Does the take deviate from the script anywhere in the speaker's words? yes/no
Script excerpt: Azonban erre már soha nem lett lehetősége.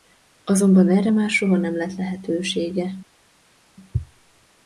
no